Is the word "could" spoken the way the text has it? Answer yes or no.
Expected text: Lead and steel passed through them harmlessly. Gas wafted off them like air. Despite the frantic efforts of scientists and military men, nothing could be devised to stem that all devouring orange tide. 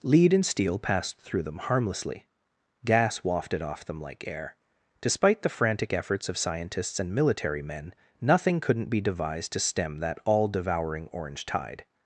no